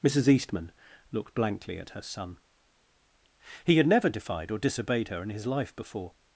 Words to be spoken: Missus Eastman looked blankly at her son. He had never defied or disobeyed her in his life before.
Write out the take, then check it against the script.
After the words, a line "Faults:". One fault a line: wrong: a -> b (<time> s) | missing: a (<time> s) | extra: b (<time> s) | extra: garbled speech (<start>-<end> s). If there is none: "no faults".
Missus Eastman looked blankly at her son. He had never defied or disobeyed her in his life before.
Faults:
no faults